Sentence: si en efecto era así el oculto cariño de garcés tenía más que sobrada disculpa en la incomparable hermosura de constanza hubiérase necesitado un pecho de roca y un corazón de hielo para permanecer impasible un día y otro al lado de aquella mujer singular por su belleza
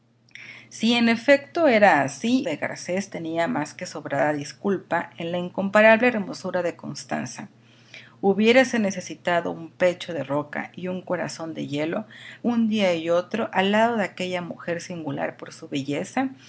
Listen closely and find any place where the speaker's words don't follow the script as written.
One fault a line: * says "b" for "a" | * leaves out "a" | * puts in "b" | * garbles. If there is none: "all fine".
* leaves out "el oculto cariño"
* leaves out "para permanecer impasible"